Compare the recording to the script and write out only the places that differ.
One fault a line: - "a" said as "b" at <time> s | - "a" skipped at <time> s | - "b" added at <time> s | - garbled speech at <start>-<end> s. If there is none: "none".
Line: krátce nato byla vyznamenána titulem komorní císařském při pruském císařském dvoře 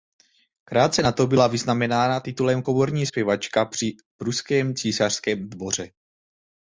- "císařském" said as "zpěvačka" at 3.0 s